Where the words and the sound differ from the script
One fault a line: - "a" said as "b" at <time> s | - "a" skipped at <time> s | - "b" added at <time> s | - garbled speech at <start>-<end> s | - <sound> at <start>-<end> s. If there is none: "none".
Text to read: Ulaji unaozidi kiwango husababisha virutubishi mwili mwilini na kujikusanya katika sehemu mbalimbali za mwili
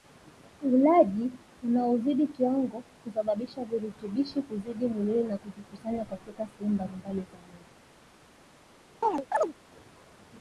- "mwili" said as "kuzidi" at 4.4 s
- chirp at 9.0-9.5 s